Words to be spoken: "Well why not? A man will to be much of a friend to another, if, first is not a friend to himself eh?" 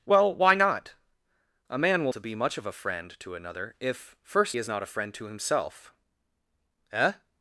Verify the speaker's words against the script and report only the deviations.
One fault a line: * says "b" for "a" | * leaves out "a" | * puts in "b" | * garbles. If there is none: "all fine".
all fine